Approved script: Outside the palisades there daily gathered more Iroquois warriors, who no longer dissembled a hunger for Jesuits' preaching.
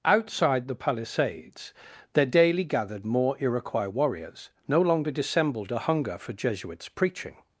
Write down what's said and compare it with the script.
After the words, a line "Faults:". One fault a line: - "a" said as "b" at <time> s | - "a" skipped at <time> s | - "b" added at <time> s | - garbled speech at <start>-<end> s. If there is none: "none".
Outside the palisades there daily gathered more Iroquois warriors, no longer dissembled a hunger for Jesuits' preaching.
Faults:
- "who" skipped at 4.5 s